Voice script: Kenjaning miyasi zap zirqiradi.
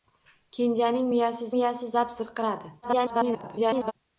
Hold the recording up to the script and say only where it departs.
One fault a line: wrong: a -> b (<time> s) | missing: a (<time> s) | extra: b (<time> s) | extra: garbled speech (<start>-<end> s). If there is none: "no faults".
extra: miyasi (1.5 s)
extra: garbled speech (2.8-3.9 s)